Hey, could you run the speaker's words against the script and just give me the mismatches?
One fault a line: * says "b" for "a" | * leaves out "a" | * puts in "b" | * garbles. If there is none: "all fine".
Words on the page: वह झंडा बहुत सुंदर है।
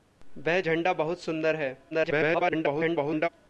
* garbles